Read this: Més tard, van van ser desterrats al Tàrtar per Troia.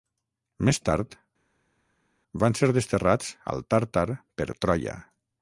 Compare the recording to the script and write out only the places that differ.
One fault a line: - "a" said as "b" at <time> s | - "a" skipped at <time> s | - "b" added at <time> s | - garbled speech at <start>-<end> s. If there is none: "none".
- "van" skipped at 2.6 s